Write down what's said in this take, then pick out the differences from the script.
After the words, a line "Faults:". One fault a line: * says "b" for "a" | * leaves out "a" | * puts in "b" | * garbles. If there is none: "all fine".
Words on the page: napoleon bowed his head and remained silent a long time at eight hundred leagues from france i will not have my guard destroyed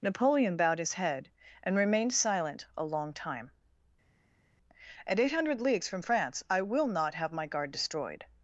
napoleon bowed his head and remained silent a long time at eight hundred leagues from france i will not have my guard destroyed
Faults:
all fine